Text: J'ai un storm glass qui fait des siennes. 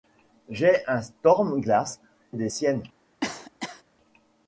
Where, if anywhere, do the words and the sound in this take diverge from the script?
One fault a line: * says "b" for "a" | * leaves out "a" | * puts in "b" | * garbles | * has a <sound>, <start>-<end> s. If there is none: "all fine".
* leaves out "qui fait"
* has a cough, 3.2-3.8 s